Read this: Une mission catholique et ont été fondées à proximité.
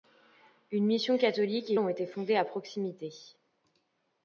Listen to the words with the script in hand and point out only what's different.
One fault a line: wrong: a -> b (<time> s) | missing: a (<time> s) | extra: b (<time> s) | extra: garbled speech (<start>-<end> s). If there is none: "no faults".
no faults